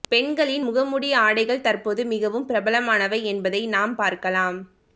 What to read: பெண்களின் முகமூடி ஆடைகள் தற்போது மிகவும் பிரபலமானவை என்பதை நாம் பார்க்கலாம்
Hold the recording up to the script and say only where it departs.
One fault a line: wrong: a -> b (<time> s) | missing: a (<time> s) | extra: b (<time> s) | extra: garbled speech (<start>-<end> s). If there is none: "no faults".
no faults